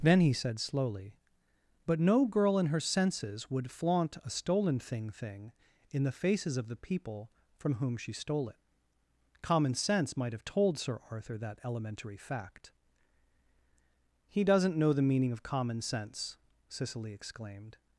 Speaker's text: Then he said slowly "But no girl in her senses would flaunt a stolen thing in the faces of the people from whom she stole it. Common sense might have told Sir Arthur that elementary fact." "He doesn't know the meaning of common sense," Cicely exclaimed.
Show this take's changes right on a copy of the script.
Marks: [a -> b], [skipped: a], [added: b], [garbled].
Then he said slowly "But no girl in her senses would flaunt a stolen thing [added: thing] in the faces of the people from whom she stole it. Common sense might have told Sir Arthur that elementary fact." "He doesn't know the meaning of common sense," Cicely exclaimed.